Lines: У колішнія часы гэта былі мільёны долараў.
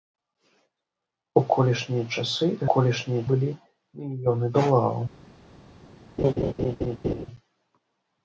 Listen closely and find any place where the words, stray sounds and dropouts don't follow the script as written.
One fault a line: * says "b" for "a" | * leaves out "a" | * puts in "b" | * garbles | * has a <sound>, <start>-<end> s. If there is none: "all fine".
* says "колішнія" for "гэта"
* has a laugh, 6.2-7.3 s